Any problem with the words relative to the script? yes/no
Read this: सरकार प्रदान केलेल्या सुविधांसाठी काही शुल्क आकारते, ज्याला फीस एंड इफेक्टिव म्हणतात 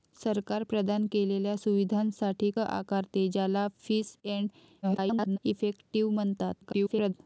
yes